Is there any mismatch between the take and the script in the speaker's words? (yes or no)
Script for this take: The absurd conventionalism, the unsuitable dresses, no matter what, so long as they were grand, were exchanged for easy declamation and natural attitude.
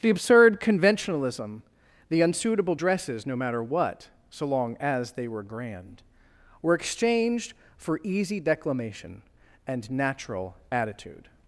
no